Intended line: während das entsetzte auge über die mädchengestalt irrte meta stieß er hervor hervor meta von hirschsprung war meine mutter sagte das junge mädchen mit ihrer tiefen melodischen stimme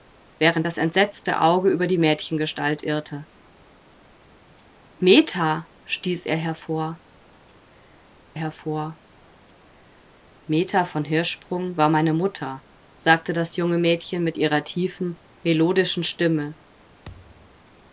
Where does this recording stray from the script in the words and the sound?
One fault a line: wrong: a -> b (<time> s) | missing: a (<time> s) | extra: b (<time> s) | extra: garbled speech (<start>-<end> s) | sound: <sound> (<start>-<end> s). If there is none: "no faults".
sound: thud (17.0-17.7 s)